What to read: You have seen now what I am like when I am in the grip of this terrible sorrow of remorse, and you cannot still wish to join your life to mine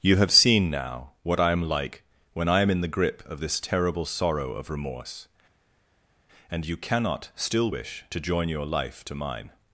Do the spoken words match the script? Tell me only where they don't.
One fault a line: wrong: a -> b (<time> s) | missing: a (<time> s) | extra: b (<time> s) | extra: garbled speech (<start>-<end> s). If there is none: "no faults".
no faults